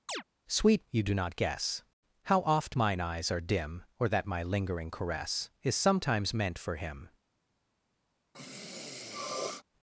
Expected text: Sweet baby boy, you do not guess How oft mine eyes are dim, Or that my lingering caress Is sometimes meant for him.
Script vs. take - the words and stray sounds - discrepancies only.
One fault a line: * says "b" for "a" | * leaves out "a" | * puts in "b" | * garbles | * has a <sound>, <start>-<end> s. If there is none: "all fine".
* has a chirp, 0.1-0.2 s
* leaves out "baby boy"
* has a sniff, 8.3-9.6 s